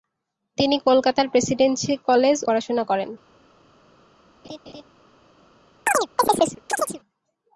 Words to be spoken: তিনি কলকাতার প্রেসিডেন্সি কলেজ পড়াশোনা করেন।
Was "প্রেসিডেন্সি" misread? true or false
false